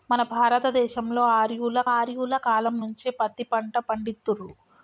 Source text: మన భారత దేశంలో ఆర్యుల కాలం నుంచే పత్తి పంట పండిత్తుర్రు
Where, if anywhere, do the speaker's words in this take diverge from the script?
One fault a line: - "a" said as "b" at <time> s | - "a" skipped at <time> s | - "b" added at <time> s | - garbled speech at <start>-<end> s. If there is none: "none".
- "ఆర్యుల" added at 1.9 s